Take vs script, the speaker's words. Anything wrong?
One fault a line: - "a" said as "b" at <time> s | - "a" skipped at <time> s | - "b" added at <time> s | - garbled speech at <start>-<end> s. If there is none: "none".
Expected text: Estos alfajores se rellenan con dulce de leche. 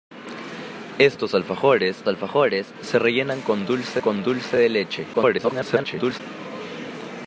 - "alfajores" added at 2.1 s
- "con dulce" added at 4.0 s
- garbled speech at 5.1-6.2 s